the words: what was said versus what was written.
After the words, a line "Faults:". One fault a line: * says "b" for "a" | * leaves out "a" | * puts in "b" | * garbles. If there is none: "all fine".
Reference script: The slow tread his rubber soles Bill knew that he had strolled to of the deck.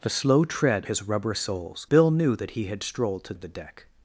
The slow tread his rubber soles Bill knew that he had strolled to of the deck.
Faults:
all fine